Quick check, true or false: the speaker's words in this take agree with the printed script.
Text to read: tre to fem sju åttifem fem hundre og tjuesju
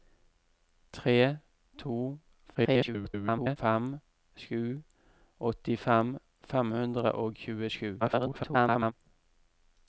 false